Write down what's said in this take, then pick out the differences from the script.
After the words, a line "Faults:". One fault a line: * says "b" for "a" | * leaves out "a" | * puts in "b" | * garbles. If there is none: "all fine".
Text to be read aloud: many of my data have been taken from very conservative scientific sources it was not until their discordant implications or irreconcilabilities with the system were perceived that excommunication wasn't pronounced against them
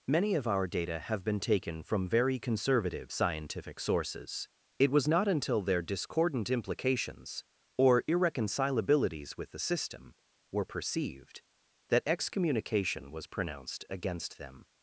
many of our data have been taken from very conservative scientific sources it was not until their discordant implications or irreconcilabilities with the system were perceived that excommunication was pronounced against them
Faults:
* says "our" for "my"
* says "was" for "wasn't"